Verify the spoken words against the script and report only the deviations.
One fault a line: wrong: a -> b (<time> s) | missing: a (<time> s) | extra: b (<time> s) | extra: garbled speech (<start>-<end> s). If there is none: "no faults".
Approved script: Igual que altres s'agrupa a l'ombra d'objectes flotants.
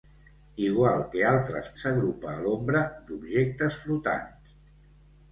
no faults